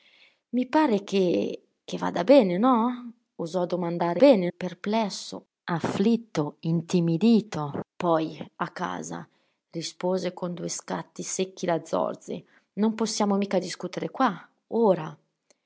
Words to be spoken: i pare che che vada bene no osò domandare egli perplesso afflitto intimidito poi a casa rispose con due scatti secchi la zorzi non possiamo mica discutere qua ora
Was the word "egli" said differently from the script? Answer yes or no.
yes